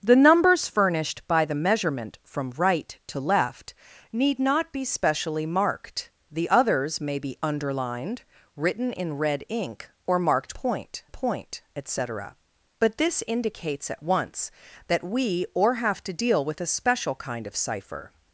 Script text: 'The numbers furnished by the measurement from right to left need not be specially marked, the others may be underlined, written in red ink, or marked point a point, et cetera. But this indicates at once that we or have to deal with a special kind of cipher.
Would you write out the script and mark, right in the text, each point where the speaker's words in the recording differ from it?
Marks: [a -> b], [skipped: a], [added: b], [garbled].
'The numbers furnished by the measurement from right to left need not be specially marked, the others may be underlined, written in red ink, or marked point a point, et cetera. But this indicates at once that we or have to deal with a special kind of cipher.